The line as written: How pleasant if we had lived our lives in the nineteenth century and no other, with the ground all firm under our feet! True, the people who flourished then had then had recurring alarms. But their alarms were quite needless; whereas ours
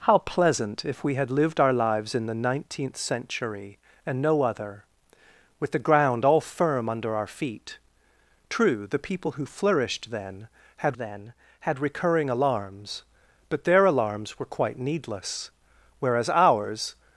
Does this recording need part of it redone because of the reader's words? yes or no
no